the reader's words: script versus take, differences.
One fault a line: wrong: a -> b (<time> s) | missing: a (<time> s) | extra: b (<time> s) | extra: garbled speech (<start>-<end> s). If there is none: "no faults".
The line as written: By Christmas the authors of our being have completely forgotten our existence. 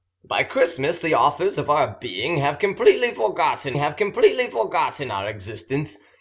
extra: have completely forgotten (3.8 s)